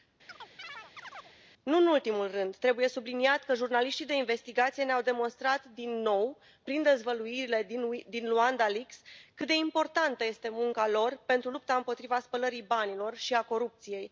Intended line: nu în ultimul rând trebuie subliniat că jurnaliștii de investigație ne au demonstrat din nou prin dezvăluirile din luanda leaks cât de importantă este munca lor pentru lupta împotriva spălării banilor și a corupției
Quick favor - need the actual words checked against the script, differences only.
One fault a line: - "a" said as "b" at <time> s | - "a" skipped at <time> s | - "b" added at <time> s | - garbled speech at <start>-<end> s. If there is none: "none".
none